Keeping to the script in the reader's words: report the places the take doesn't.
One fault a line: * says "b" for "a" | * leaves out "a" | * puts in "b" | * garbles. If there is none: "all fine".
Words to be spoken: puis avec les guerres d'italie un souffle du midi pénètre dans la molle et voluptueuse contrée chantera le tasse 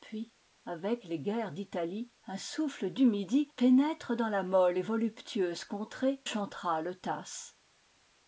all fine